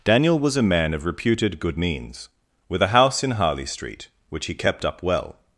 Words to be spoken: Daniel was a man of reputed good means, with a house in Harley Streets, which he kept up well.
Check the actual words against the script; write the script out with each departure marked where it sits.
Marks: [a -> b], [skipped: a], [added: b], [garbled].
Daniel was a man of reputed good means, with a house in Harley [Streets, -> Street] which he kept up well.